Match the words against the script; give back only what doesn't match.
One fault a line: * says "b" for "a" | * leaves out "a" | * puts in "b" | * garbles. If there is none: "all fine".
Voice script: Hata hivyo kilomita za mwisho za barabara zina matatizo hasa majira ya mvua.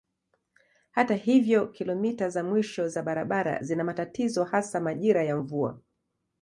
all fine